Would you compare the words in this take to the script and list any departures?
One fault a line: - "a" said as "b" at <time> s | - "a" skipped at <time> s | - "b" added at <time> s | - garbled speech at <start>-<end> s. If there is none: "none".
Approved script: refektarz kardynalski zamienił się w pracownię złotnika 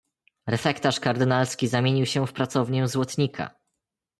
none